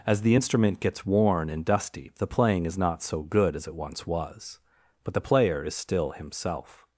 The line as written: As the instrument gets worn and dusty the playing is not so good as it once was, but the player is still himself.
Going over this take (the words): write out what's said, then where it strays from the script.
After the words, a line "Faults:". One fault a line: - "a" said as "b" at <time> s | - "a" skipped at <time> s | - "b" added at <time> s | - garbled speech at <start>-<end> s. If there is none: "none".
As the instrument gets worn and dusty the playing is not so good as it once was, but the player is still himself.
Faults:
none